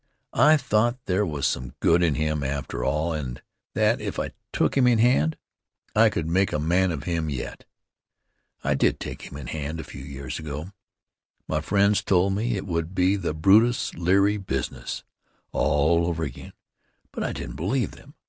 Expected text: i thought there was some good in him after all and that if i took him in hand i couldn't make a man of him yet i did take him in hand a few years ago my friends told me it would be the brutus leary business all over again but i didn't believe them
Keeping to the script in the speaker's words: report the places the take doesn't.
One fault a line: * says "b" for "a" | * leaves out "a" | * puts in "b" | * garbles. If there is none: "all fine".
* says "could" for "couldn't"